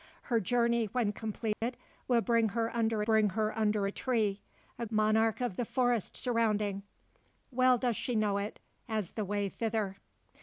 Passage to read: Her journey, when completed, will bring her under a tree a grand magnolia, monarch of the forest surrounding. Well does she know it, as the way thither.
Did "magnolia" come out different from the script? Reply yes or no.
yes